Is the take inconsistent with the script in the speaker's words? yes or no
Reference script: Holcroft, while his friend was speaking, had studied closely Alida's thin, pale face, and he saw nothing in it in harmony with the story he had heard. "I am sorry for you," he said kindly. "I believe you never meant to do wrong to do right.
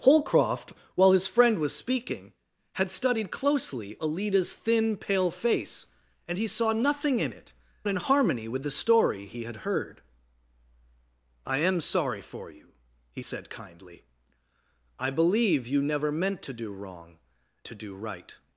no